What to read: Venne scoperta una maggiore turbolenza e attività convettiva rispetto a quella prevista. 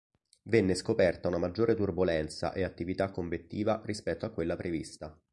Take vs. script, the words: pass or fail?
pass